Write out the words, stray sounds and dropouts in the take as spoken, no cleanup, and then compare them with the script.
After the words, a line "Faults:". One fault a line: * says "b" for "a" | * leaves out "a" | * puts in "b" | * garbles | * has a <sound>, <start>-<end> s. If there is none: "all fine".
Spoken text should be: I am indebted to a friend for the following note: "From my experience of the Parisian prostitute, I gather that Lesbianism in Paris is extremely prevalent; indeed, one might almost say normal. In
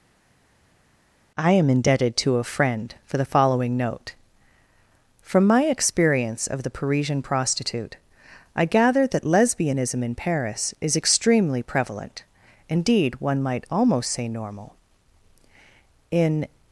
I am indebted to a friend for the following note: "From my experience of the Parisian prostitute, I gather that Lesbianism in Paris is extremely prevalent; indeed, one might almost say normal. In
Faults:
all fine